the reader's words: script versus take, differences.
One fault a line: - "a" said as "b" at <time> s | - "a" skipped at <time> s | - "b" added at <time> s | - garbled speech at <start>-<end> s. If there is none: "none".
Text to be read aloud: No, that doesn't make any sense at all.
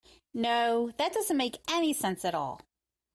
none